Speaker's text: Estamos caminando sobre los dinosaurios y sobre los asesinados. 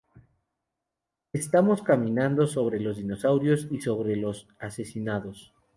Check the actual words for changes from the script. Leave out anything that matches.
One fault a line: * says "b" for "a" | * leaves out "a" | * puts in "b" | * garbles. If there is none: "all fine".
all fine